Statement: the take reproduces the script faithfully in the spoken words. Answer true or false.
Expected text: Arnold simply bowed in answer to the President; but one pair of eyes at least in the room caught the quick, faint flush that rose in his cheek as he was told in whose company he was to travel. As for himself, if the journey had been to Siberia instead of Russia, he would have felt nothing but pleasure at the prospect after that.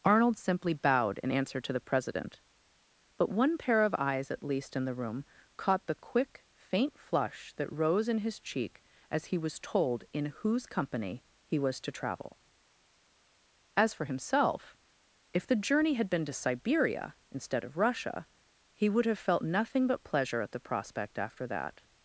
true